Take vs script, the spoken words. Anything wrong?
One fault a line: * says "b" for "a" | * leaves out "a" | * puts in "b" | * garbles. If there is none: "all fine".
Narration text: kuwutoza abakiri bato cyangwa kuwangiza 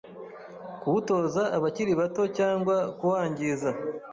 all fine